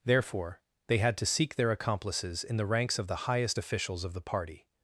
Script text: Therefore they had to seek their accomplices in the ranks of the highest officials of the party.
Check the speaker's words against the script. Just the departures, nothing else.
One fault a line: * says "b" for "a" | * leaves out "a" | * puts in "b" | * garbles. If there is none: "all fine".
all fine